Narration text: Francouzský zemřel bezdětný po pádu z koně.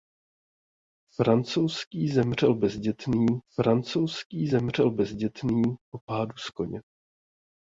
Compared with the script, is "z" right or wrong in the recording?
right